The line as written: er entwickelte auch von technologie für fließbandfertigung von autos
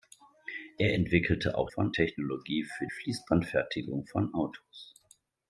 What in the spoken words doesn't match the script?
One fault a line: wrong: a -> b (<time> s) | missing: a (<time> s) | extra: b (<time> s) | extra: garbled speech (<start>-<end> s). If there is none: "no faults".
no faults